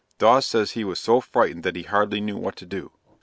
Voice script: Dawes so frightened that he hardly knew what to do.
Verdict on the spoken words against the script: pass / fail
fail